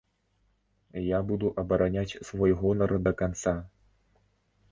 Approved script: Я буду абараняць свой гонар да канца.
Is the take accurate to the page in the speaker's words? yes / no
yes